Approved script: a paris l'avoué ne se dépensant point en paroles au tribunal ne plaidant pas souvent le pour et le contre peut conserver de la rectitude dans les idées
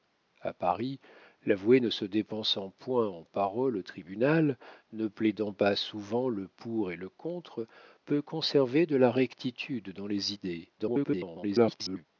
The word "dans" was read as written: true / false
true